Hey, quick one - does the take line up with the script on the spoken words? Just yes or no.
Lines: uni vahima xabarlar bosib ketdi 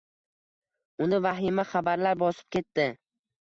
yes